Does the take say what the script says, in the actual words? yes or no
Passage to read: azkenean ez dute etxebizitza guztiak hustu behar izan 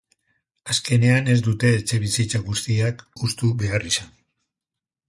yes